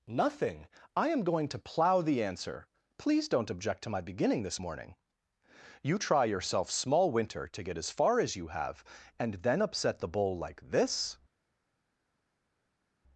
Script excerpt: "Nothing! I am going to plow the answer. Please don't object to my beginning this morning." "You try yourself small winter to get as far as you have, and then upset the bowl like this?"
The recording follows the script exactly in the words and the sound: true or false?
true